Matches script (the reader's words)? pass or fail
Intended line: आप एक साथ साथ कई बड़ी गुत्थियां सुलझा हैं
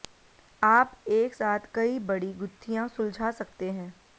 fail